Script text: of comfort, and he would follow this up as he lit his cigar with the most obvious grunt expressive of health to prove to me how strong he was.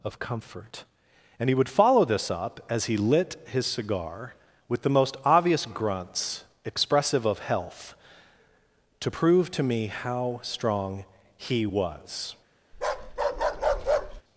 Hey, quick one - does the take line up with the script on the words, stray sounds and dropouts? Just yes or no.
no